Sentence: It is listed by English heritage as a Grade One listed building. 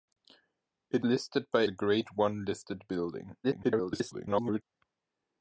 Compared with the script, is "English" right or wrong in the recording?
wrong